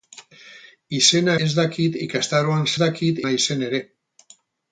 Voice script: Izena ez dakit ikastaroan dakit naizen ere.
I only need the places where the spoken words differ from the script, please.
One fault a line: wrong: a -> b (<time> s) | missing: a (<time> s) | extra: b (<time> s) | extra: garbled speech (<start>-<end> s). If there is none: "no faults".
no faults